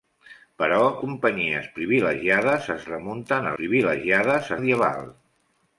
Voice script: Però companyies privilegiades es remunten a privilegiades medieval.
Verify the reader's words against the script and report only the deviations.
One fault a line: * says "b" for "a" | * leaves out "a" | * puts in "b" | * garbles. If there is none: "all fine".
all fine